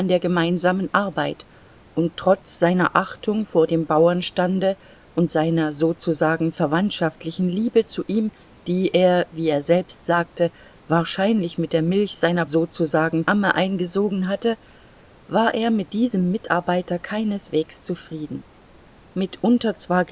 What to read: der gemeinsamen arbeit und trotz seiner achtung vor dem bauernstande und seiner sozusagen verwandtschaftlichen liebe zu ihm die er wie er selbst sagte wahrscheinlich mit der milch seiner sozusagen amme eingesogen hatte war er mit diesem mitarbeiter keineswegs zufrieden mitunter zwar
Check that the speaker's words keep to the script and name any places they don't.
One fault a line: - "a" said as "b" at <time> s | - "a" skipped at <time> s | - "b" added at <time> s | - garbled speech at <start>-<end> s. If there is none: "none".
none